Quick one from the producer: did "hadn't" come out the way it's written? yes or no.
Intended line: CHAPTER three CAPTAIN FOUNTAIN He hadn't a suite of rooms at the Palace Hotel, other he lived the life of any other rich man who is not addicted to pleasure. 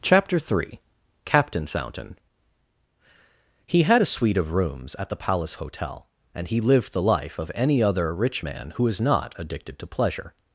no